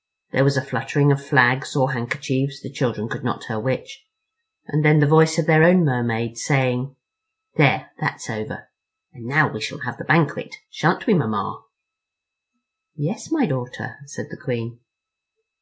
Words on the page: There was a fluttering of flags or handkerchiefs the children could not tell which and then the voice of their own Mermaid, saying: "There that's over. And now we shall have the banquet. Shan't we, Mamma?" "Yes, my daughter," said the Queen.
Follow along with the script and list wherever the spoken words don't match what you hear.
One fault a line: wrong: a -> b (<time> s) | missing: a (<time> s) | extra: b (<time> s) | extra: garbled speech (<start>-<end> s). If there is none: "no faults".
no faults